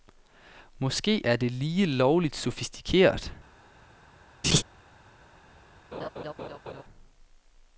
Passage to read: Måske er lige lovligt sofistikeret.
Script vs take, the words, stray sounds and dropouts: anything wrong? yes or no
yes